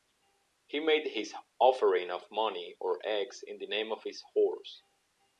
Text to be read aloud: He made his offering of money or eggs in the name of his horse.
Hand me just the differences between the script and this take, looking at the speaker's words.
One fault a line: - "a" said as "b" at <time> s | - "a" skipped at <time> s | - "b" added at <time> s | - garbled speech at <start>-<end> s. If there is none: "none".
none